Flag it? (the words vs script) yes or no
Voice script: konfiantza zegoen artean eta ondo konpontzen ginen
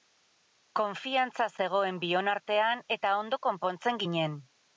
yes